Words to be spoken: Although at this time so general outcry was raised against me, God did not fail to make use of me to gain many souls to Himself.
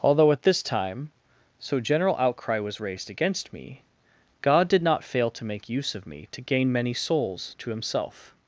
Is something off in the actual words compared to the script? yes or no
no